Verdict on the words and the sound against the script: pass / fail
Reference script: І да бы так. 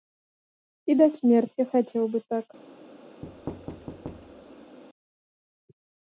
fail